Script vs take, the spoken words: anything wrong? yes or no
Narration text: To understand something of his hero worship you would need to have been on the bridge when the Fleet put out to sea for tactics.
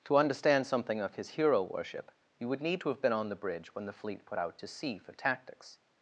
no